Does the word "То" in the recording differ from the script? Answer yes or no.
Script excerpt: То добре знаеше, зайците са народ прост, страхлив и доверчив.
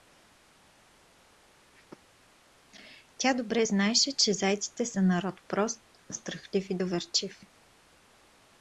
yes